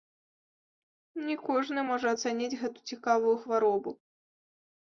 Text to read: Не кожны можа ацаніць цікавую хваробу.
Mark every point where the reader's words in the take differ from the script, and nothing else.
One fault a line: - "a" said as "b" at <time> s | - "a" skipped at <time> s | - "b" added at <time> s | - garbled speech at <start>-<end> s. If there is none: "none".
- "гэту" added at 2.6 s